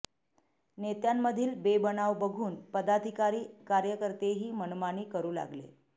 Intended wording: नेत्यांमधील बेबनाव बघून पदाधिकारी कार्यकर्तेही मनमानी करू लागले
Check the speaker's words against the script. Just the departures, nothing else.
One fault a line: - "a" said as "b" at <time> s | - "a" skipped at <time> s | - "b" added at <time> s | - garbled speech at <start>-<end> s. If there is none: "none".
none